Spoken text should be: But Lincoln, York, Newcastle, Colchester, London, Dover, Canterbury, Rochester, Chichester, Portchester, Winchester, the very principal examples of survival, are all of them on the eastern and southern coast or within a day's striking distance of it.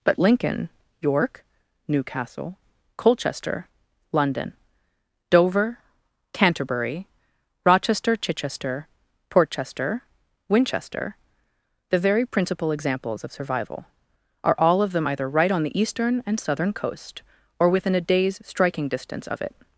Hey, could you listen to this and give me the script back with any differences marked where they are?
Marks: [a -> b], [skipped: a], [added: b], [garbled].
But Lincoln, York, Newcastle, Colchester, London, Dover, Canterbury, Rochester, Chichester, Portchester, Winchester, the very principal examples of survival, are all of them [added: either right] on the eastern and southern coast or within a day's striking distance of it.